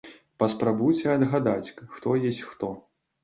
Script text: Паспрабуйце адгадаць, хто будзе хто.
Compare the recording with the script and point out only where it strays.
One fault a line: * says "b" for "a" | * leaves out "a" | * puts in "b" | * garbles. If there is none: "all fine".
* says "ёсць" for "будзе"